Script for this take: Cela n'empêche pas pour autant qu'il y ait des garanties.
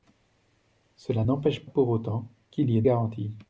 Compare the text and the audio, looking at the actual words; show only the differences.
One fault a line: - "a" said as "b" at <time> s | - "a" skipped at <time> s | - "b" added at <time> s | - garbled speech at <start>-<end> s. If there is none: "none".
- "pas" skipped at 1.6 s
- "des" skipped at 2.8 s